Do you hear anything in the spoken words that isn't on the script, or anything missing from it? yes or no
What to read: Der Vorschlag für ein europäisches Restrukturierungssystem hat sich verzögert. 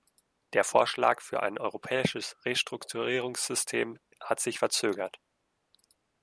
no